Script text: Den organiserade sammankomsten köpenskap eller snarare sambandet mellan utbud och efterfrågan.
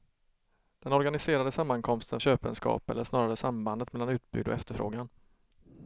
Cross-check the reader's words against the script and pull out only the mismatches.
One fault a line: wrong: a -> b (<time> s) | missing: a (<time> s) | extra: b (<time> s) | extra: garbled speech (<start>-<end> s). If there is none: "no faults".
no faults